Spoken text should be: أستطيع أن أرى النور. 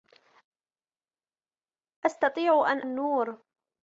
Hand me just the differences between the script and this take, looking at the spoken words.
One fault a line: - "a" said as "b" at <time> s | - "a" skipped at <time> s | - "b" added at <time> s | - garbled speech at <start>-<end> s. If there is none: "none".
- "أرى" skipped at 2.8 s